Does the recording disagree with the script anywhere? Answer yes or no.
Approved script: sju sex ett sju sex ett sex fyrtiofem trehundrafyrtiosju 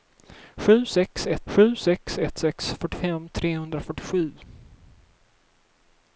no